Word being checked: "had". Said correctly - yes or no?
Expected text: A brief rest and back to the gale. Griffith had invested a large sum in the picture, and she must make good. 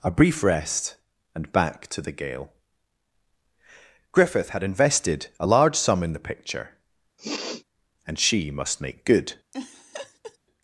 yes